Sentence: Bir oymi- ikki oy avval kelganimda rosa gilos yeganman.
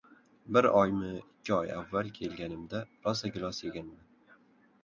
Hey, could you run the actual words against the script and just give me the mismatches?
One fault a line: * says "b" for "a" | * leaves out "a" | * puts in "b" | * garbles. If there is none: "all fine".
all fine